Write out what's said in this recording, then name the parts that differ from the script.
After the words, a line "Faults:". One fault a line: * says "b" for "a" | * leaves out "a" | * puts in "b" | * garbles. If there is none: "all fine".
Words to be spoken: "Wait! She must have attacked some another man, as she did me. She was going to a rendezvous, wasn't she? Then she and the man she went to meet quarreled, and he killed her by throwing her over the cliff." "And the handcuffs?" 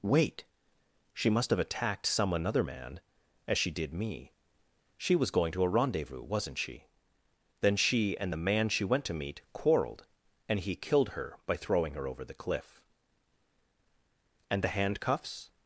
"Wait! She must have attacked some another man, as she did me. She was going to a rendezvous, wasn't she? Then she and the man she went to meet quarreled, and he killed her by throwing her over the cliff." "And the handcuffs?"
Faults:
all fine